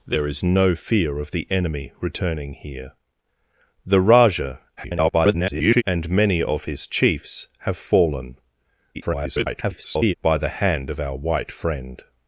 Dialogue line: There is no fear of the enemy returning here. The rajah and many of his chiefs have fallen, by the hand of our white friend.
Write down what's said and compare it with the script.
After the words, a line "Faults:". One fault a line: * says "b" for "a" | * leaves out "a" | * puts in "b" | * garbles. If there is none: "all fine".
There is no fear of the enemy returning here. The rajah [garbled] and many of his chiefs have fallen, [garbled] by the hand of our white friend.
Faults:
* garbles
* garbles